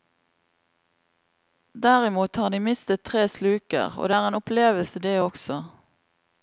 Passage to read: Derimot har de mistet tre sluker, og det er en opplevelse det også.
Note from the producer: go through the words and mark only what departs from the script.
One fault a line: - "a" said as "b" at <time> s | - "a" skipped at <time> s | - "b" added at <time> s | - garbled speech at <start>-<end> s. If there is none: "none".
none